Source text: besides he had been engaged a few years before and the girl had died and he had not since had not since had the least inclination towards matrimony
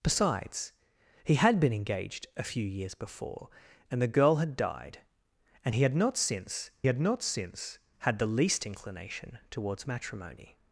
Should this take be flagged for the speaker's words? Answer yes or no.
no